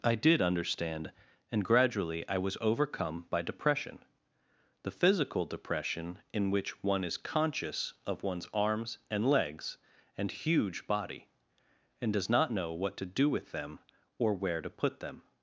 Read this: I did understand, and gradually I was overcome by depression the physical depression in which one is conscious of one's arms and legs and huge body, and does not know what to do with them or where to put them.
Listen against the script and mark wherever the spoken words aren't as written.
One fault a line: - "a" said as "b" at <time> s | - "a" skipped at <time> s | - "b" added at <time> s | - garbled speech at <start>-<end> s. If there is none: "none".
none